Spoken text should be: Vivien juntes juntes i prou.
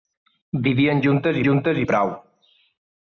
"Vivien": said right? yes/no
yes